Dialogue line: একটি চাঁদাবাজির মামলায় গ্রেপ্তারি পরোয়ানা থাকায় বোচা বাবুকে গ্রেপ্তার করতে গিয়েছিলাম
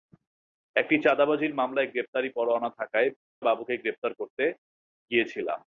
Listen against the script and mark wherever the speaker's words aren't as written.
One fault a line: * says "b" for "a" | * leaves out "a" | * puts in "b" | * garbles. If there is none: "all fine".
* leaves out "বোচা"